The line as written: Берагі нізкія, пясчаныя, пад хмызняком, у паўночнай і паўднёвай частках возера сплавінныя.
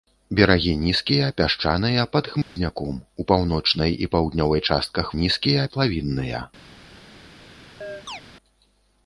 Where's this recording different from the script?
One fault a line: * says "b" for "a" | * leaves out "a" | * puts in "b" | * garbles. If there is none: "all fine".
* says "нізкія" for "возера"